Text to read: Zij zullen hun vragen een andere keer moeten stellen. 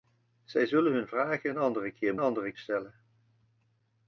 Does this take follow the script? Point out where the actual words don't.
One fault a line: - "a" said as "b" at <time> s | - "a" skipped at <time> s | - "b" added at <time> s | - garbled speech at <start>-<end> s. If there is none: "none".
- "moeten" said as "andere" at 2.2 s